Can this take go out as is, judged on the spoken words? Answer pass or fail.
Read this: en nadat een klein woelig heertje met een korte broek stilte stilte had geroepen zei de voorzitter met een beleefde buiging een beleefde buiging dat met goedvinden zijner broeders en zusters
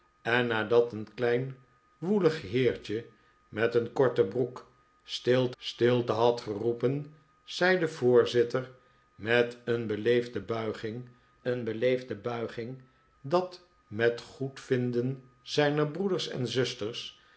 pass